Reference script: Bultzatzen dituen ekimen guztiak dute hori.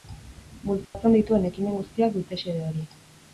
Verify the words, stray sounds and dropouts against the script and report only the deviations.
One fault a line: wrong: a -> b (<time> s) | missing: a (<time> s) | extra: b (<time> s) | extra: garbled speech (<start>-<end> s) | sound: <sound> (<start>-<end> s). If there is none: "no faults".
sound: dropout (0.8-0.9 s)
extra: xede (2.5 s)